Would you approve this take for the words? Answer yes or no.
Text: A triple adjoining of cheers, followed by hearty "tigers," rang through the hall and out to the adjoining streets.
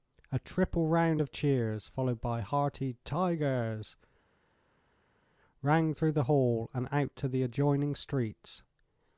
no